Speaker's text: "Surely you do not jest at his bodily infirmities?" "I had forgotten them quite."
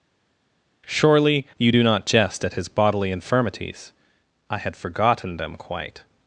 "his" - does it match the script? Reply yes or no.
yes